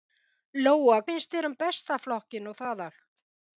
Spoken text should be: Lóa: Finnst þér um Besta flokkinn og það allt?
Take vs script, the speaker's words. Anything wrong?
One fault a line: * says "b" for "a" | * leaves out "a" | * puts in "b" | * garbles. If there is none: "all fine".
all fine